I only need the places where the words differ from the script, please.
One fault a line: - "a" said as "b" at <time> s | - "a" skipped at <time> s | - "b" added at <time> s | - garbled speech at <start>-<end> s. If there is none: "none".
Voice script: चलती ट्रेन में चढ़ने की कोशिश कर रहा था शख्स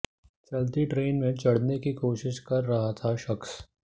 none